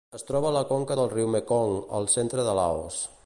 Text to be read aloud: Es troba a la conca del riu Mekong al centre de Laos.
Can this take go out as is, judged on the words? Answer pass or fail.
pass